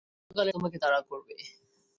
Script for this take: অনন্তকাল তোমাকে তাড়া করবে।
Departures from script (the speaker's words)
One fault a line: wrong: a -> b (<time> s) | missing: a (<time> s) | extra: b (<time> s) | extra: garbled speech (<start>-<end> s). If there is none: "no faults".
no faults